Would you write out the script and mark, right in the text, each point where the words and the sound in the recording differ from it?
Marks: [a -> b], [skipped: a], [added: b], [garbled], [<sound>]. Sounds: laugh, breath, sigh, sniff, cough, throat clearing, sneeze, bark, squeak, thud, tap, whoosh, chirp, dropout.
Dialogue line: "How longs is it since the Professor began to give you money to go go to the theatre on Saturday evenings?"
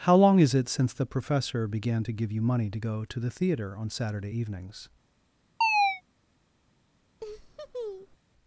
"How [longs -> long] is it since the Professor began to give you money to go [skipped: go] to the theatre on Saturday evenings?" [chirp] [laugh]